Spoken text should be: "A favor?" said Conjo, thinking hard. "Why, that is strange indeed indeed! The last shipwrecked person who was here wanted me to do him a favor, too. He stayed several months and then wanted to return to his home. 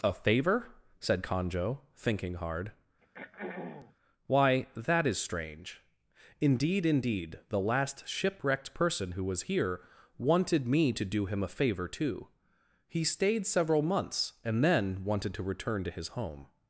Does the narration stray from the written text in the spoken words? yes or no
no